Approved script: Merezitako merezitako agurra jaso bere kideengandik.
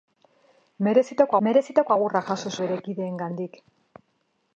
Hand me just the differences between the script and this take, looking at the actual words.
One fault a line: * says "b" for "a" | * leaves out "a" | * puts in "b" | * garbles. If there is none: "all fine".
all fine